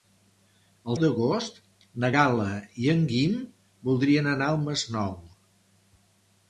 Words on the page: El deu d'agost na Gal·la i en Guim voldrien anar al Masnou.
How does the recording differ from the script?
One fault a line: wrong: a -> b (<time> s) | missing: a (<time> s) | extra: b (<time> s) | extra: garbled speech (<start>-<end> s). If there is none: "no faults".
missing: deu (0.9 s)